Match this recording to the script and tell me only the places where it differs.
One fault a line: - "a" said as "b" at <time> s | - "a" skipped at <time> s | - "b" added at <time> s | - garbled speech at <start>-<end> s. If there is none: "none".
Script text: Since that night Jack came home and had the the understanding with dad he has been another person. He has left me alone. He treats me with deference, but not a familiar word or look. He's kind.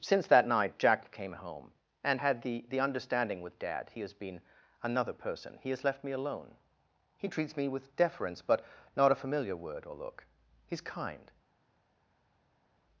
none